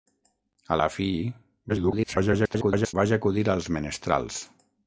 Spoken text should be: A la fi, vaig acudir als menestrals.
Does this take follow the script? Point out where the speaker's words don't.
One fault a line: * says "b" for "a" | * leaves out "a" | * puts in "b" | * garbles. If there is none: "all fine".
* garbles